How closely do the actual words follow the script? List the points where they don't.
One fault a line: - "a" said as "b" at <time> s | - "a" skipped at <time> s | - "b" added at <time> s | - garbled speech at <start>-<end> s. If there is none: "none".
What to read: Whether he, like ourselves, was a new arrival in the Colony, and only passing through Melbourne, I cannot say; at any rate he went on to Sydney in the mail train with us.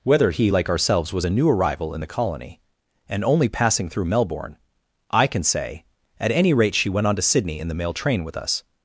- "cannot" said as "can" at 5.3 s
- "he" said as "she" at 6.8 s